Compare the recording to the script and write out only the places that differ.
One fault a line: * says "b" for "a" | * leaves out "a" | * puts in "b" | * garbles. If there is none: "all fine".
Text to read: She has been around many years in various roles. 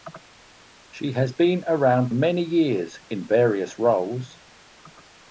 all fine